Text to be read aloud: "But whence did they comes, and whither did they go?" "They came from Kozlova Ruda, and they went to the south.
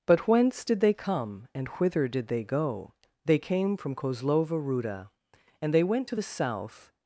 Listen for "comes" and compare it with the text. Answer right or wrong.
wrong